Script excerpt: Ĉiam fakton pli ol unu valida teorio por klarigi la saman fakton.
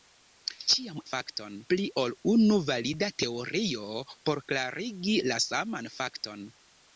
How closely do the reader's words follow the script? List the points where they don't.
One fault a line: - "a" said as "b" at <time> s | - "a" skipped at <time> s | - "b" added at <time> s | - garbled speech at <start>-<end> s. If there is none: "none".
none